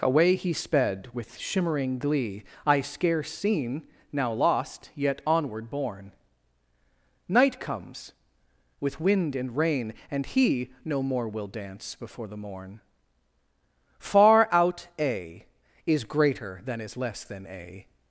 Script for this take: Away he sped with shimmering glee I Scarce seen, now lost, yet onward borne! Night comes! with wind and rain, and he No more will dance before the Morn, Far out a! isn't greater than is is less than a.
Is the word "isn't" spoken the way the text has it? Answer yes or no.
no